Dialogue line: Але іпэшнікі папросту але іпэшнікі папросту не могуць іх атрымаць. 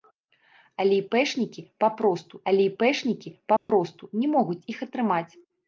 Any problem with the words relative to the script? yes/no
no